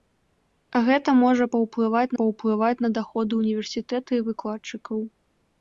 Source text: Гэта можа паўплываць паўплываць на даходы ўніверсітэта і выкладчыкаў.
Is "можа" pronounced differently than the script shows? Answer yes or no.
no